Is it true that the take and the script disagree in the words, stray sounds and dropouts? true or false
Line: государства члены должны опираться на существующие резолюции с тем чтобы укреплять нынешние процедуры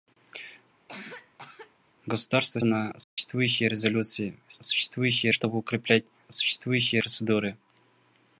true